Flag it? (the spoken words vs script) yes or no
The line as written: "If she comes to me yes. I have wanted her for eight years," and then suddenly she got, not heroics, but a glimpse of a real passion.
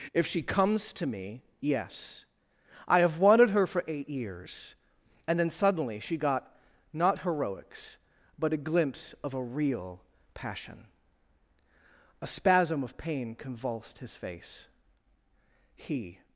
yes